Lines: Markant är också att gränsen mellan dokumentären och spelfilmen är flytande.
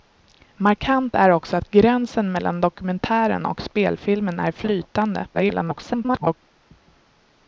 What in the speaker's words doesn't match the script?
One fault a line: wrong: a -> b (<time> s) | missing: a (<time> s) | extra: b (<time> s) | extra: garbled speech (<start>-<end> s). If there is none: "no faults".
extra: garbled speech (5.3-6.4 s)